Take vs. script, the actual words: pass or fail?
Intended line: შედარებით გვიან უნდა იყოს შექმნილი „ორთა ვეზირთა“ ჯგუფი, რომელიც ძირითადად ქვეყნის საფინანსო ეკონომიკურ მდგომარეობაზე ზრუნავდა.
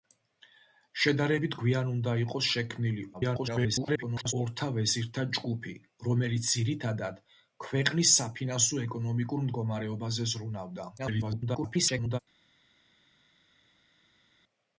fail